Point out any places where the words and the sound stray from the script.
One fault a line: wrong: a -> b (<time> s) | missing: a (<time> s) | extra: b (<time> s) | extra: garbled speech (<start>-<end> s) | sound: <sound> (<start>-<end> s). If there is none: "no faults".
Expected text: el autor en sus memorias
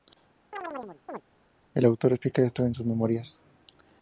sound: chirp (0.5-1.2 s)
extra: explica esto (2.1 s)